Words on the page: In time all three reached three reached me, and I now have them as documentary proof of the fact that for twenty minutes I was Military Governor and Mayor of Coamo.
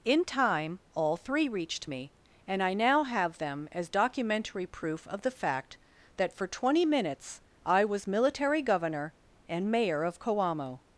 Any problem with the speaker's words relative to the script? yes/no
yes